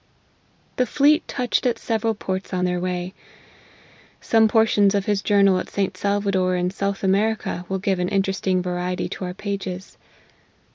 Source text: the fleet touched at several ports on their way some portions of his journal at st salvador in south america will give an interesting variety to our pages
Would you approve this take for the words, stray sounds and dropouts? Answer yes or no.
yes